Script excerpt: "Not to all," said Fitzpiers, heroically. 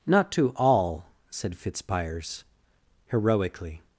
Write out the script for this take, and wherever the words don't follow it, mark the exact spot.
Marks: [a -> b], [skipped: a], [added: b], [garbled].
"Not to all," said Fitzpiers, heroically.